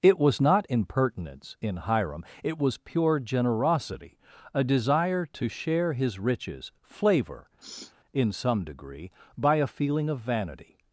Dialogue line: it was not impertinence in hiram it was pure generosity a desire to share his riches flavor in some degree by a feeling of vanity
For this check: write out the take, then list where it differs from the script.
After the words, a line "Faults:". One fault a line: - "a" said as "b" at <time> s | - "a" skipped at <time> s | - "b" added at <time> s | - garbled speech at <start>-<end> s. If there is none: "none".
it was not impertinence in hiram it was pure generosity a desire to share his riches flavor in some degree by a feeling of vanity
Faults:
none